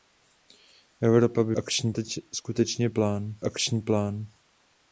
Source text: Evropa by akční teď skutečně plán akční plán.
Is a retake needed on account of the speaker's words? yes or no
no